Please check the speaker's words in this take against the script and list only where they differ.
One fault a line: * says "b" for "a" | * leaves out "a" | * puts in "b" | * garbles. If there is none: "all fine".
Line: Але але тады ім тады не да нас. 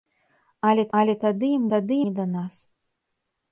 all fine